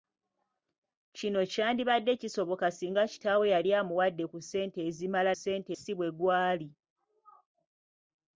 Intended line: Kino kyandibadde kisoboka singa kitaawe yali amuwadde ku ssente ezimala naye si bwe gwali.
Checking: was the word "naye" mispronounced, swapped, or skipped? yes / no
yes